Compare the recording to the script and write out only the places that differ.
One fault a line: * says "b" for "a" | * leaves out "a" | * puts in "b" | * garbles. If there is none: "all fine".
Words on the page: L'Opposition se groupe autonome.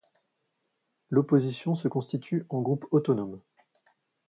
* puts in "constitue en"